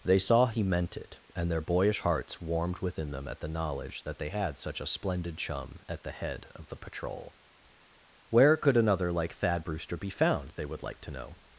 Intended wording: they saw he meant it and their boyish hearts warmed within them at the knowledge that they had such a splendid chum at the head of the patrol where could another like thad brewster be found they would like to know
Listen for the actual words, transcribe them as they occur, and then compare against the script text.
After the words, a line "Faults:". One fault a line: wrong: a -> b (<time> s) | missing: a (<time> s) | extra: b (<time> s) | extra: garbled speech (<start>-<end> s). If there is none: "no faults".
they saw he meant it and their boyish hearts warmed within them at the knowledge that they had such a splendid chum at the head of the patrol where could another like thad brewster be found they would like to know
Faults:
no faults